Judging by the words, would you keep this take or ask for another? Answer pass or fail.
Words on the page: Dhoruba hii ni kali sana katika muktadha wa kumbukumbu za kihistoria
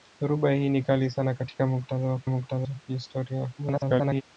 fail